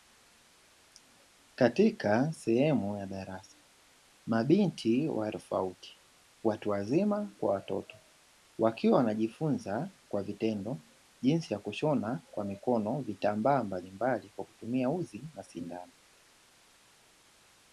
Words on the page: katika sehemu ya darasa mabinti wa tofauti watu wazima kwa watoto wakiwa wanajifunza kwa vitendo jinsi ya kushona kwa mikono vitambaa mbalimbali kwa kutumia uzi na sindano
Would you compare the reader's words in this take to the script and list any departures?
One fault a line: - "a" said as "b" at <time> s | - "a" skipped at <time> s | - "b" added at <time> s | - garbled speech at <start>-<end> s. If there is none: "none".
none